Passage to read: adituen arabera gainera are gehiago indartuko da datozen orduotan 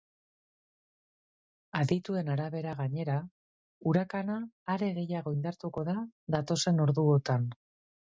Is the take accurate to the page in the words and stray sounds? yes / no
no